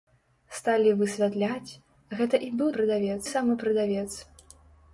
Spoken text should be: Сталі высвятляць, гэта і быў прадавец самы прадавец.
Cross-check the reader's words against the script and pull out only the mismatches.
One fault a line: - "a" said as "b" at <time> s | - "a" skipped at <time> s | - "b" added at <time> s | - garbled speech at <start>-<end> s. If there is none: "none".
none